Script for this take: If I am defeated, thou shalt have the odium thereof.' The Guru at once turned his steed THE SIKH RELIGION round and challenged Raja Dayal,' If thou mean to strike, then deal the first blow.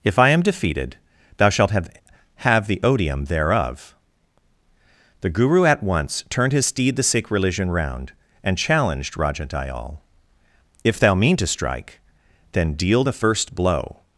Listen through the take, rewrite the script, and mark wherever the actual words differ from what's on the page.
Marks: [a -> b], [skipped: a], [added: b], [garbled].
If I am defeated, thou shalt have [added: have] the odium thereof.' The Guru at once turned his steed THE SIKH RELIGION round and challenged Raja Dayal,' If thou mean to strike, then deal the first blow.